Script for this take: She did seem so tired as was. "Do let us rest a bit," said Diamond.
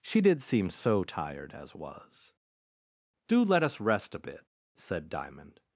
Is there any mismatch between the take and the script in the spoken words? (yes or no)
no